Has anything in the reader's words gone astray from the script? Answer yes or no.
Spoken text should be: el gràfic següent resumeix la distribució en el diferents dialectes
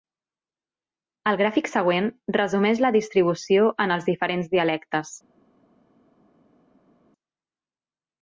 yes